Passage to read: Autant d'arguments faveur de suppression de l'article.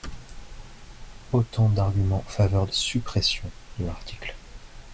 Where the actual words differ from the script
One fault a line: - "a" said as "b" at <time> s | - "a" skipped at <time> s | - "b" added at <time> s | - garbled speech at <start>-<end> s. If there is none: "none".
none